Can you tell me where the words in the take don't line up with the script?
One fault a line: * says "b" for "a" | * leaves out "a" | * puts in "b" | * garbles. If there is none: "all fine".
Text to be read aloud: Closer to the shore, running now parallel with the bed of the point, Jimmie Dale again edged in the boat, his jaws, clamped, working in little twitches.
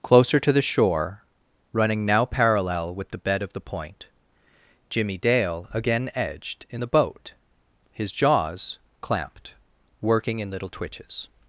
all fine